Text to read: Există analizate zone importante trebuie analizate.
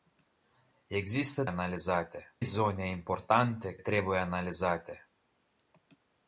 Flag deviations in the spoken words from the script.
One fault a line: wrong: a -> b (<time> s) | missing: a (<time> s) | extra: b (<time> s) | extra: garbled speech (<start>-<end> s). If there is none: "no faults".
no faults